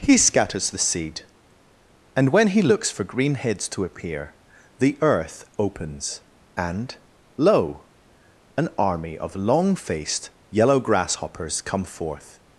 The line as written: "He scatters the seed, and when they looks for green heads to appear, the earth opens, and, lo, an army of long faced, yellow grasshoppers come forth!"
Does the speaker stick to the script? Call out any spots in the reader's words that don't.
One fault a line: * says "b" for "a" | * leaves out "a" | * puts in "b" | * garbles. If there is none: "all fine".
* says "he" for "they"